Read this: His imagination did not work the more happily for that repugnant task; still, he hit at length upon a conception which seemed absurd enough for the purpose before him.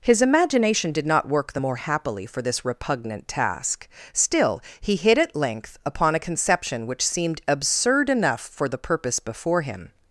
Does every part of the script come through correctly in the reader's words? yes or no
no